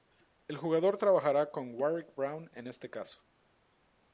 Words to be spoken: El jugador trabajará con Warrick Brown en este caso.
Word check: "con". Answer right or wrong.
right